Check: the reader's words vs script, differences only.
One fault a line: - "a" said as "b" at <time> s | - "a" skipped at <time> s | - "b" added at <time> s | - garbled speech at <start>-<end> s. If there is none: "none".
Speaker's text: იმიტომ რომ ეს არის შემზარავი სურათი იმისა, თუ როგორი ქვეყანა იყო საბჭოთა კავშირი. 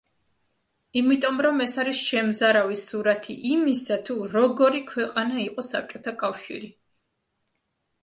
none